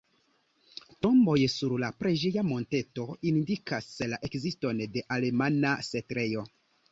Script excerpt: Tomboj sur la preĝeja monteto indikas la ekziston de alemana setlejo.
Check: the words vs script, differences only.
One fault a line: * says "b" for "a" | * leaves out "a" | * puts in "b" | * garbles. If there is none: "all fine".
all fine